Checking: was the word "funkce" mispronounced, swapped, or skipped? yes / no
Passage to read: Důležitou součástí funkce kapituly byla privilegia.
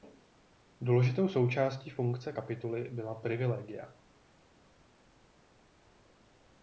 no